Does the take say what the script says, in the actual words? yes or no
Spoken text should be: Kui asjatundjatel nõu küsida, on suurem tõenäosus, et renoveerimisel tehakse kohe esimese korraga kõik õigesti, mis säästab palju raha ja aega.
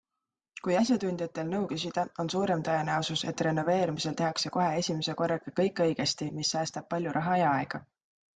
yes